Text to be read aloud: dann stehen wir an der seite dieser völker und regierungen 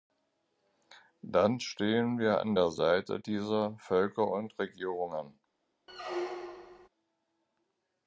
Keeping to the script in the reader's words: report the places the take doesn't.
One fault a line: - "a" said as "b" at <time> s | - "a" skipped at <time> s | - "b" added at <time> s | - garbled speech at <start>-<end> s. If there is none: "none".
none